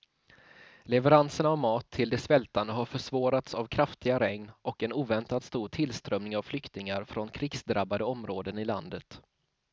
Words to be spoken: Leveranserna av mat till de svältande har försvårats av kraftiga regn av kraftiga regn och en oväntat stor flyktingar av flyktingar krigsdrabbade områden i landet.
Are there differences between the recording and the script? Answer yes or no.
yes